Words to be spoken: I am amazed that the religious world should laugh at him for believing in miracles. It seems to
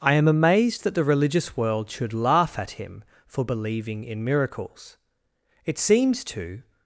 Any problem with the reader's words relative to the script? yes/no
no